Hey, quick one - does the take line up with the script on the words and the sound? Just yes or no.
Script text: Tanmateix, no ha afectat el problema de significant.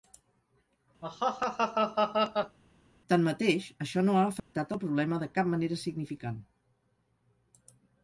no